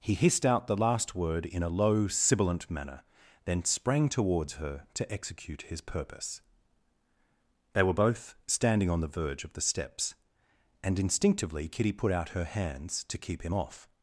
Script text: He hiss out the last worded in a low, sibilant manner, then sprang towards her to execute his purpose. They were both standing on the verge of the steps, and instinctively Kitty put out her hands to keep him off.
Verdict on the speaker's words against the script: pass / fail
fail